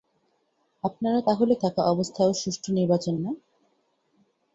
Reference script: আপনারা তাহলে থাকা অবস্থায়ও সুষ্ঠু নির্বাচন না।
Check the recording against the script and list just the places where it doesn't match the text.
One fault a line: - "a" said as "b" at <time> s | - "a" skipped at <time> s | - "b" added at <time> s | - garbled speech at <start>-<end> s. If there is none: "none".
none